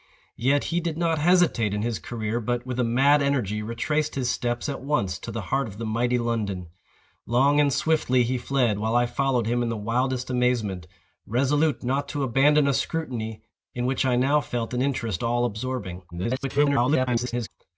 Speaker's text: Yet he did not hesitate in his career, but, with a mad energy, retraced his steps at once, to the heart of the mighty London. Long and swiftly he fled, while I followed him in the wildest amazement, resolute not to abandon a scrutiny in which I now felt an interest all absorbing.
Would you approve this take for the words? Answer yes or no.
no